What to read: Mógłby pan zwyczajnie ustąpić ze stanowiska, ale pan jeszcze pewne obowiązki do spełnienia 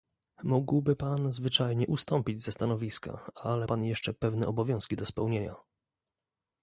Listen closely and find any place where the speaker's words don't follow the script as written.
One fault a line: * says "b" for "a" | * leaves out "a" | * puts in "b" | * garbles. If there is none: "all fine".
all fine